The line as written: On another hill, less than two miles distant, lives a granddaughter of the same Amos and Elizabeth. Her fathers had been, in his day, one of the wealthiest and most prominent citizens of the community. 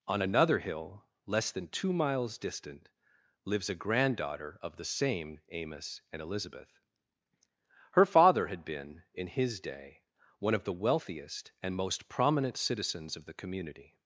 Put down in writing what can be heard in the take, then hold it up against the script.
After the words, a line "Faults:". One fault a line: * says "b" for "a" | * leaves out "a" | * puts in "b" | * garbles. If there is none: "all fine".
On another hill, less than two miles distant, lives a granddaughter of the same Amos and Elizabeth. Her father had been, in his day, one of the wealthiest and most prominent citizens of the community.
Faults:
* says "father" for "fathers"